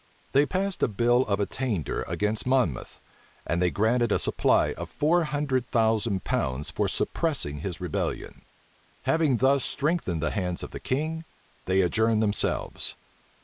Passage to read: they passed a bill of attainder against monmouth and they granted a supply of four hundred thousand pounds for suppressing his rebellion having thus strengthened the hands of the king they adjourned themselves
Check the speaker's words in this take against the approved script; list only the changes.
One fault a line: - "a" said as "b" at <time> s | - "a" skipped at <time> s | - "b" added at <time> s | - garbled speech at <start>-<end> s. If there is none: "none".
none